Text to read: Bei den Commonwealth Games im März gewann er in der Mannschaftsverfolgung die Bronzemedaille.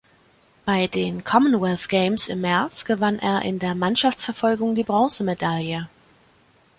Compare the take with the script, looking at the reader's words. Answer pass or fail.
pass